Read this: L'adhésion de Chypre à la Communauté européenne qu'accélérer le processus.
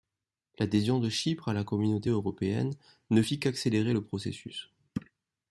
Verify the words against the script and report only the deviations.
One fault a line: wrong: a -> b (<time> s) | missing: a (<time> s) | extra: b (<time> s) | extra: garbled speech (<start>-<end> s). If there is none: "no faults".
extra: ne fit (3.1 s)